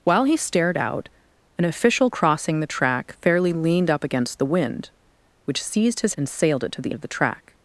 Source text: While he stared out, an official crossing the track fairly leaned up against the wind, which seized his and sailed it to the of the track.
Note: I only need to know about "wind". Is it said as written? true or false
true